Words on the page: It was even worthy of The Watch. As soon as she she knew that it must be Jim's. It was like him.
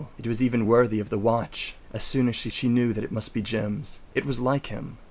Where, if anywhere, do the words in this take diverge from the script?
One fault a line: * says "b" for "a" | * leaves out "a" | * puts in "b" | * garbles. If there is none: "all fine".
all fine